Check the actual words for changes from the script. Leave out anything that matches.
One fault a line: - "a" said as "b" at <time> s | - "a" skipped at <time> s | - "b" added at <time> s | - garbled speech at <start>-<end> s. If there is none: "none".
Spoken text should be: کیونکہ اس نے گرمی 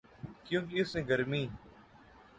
none